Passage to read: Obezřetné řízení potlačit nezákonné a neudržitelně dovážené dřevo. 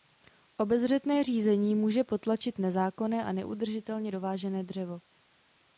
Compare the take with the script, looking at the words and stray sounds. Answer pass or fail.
fail